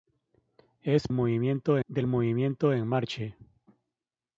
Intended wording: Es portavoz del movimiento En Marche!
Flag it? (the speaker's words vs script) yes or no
yes